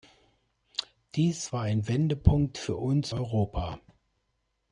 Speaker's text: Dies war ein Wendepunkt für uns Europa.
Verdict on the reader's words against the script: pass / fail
pass